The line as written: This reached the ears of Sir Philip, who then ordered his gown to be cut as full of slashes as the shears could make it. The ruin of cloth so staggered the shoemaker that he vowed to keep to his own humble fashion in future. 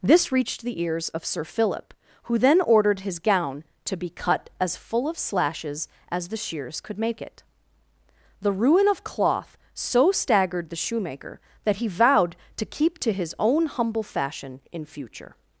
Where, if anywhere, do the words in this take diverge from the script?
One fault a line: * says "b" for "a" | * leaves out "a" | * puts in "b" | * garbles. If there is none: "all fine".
all fine